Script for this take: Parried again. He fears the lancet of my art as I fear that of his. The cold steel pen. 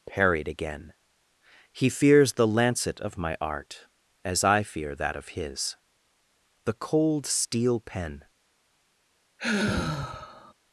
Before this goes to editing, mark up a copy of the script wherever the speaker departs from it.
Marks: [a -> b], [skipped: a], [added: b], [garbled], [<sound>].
Parried again. He fears the lancet of my art as I fear that of his. The cold steel pen. [sigh]